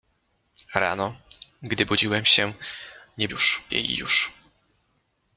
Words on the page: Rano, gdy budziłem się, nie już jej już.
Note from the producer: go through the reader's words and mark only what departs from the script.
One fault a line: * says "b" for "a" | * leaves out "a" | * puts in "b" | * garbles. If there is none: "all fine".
all fine